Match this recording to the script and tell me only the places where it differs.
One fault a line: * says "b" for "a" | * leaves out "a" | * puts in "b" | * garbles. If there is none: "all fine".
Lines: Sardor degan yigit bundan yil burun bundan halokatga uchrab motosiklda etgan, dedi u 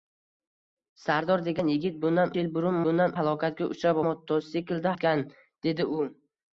all fine